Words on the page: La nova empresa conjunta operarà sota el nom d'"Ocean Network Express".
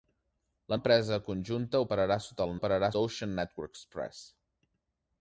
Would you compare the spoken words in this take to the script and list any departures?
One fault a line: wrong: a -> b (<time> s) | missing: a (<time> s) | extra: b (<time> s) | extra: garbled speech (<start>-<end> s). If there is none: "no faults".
missing: nova (0.8 s)
wrong: nom -> operarà (2.6 s)